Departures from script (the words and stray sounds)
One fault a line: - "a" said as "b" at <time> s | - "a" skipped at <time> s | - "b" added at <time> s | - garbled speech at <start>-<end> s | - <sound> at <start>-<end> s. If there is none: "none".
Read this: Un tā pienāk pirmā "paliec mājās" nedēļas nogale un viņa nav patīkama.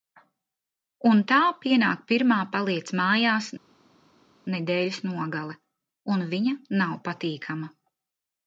none